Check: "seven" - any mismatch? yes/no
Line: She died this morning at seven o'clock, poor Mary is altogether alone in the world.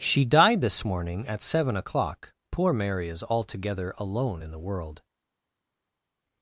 no